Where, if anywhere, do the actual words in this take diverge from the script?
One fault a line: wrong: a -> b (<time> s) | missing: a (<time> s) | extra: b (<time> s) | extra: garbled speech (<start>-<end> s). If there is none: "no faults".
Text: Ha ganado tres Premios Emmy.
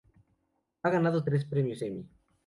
no faults